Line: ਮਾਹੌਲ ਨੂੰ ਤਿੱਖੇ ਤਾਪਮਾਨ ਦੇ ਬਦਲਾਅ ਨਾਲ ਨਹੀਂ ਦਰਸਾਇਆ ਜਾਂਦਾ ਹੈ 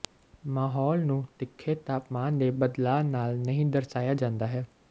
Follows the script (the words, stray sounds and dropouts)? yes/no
yes